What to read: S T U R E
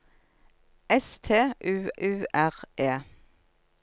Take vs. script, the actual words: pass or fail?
fail